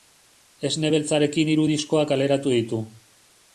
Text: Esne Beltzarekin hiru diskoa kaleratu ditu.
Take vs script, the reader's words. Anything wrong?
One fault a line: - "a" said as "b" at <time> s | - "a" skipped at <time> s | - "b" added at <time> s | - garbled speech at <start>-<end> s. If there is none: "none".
none